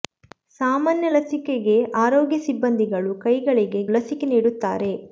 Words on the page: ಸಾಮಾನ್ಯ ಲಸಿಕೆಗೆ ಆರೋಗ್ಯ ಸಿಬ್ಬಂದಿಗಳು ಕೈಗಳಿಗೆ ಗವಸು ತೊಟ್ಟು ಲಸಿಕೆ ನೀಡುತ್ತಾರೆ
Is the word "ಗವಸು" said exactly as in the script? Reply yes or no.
no